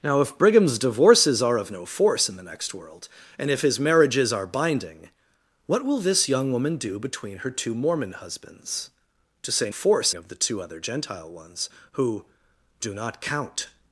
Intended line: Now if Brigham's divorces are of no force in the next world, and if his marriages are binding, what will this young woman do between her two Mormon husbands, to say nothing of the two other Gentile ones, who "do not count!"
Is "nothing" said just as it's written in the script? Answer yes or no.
no